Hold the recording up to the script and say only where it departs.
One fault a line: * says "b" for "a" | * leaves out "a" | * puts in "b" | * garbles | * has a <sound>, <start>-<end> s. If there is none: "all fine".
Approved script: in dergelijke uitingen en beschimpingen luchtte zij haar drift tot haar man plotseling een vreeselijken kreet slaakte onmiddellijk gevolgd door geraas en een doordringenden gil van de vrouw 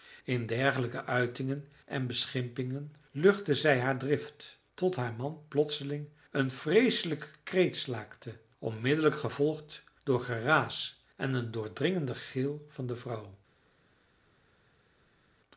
all fine